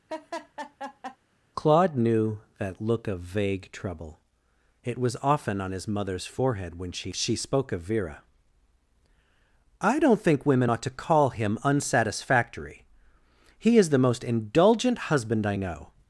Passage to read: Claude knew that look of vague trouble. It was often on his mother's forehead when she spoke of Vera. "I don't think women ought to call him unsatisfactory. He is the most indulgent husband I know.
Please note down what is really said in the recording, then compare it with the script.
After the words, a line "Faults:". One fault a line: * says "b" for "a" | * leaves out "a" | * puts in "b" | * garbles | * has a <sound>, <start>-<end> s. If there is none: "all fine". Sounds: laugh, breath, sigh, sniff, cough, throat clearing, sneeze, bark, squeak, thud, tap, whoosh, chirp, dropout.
Claude knew that look of vague trouble. It was often on his mother's forehead when she she spoke of Vera. "I don't think women ought to call him unsatisfactory. He is the most indulgent husband I know.
Faults:
* has a laugh, 0.1-1.2 s
* puts in "she"